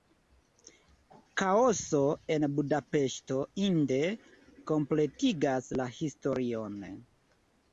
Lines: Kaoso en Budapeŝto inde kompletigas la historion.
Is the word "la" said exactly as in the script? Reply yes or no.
yes